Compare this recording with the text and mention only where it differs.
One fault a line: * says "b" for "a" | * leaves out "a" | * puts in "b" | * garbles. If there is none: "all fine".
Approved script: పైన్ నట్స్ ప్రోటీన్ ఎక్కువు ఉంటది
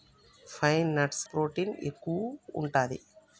all fine